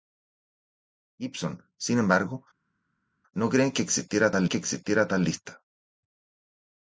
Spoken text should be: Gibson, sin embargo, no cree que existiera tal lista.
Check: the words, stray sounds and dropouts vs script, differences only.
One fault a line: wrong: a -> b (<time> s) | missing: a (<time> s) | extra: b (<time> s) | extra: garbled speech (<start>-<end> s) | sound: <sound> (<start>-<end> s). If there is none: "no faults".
extra: que existiera tal (4.5 s)